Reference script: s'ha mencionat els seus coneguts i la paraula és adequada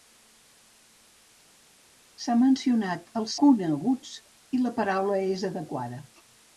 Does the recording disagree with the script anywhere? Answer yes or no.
yes